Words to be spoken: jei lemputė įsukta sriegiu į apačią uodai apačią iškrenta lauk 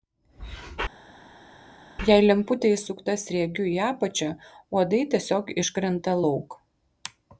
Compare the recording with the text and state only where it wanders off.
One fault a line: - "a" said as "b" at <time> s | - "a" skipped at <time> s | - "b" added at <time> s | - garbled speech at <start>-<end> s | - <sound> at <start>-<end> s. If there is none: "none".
- "apačią" said as "tiesiog" at 5.2 s